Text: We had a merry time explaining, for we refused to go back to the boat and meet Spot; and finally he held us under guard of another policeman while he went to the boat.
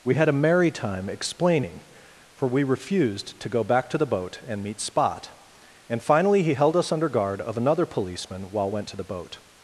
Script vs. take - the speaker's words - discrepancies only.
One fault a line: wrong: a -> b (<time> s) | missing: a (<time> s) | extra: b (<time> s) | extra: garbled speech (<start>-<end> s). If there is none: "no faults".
missing: he (8.7 s)